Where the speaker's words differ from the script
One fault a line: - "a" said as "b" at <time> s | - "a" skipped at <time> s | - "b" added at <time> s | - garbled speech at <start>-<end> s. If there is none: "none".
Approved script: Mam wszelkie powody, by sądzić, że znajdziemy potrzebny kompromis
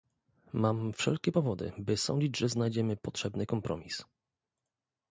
none